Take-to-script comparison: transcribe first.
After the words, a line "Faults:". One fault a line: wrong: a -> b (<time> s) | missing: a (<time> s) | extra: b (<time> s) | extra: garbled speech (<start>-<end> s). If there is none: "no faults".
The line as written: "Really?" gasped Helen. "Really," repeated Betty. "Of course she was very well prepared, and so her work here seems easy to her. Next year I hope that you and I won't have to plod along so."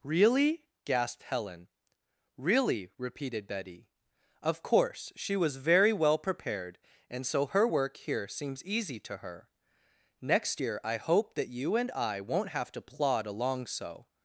"Really?" gasped Helen. "Really," repeated Betty. "Of course she was very well prepared, and so her work here seems easy to her. Next year I hope that you and I won't have to plod along so."
Faults:
no faults